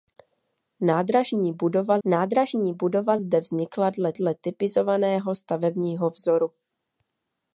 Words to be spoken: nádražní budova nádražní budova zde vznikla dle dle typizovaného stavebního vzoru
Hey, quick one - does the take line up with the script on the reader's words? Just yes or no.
yes